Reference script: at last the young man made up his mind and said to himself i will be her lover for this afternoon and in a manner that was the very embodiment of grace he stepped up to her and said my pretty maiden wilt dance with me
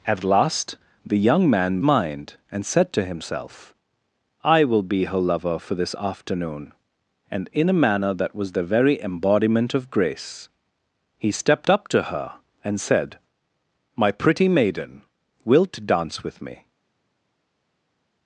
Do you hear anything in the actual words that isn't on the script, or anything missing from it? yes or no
yes